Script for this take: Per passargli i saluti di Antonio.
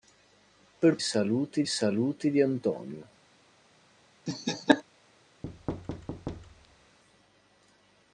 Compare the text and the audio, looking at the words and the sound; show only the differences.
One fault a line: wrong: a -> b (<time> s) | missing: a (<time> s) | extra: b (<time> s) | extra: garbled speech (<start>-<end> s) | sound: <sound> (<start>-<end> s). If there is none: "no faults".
wrong: passargli -> saluti (1.0 s)
sound: laugh (4.3-4.8 s)
sound: thud (5.4-7.0 s)